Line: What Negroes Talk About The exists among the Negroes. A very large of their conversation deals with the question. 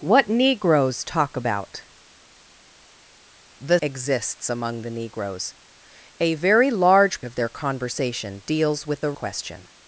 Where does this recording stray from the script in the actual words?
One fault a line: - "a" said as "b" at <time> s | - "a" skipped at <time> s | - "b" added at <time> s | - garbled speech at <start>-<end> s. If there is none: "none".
none